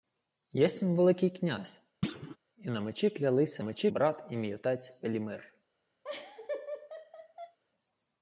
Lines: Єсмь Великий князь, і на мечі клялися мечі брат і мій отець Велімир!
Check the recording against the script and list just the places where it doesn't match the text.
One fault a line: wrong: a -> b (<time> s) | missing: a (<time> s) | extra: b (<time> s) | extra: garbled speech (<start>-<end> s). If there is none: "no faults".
no faults